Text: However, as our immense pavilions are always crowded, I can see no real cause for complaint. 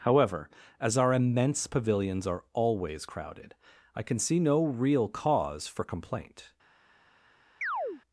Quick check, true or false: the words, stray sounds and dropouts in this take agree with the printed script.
false